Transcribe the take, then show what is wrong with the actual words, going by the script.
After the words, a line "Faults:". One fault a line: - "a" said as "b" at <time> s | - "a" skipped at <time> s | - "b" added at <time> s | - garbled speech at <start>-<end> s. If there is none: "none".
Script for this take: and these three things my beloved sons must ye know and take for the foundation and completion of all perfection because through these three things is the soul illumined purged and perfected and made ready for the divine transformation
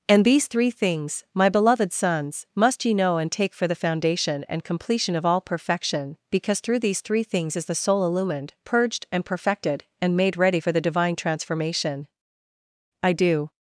and these three things my beloved sons must ye know and take for the foundation and completion of all perfection because through these three things is the soul illumined purged and perfected and made ready for the divine transformation i do
Faults:
- "i do" added at 13.0 s